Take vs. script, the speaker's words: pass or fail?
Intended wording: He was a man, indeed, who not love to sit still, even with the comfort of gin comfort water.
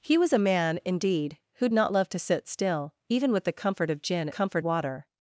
pass